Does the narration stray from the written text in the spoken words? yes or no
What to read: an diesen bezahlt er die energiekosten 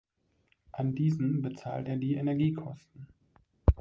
no